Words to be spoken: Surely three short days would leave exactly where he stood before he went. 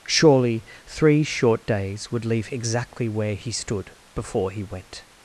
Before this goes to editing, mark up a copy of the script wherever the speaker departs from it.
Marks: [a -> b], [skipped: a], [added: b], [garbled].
Surely three short days would leave exactly where he stood before he went.